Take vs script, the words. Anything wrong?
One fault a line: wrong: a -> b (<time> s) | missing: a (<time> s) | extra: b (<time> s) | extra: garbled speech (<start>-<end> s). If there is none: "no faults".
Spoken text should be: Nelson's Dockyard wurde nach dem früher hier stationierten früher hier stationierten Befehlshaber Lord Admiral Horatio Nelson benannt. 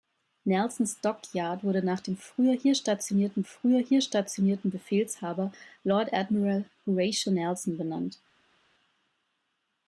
no faults